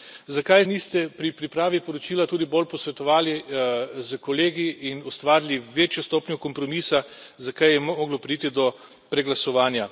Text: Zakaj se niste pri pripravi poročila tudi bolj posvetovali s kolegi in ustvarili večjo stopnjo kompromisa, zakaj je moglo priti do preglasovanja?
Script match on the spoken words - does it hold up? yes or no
no